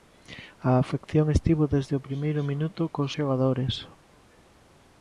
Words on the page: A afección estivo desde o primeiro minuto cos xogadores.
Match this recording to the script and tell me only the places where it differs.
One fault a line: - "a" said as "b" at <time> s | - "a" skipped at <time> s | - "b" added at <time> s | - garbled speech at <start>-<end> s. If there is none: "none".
none